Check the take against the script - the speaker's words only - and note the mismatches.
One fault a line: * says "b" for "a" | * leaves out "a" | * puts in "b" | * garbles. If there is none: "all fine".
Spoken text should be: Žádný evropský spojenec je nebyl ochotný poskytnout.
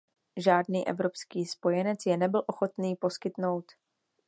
all fine